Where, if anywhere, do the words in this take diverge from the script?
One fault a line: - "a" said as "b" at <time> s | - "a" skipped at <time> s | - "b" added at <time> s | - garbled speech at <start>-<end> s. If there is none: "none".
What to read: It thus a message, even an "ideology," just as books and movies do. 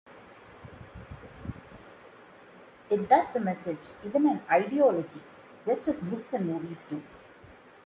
none